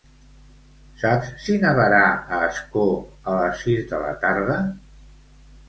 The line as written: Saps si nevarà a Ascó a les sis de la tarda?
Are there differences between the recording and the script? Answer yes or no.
no